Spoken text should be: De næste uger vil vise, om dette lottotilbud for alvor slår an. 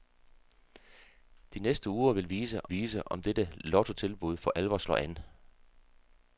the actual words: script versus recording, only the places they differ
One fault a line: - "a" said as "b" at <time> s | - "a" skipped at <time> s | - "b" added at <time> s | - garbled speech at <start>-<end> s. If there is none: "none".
- "vise" added at 2.7 s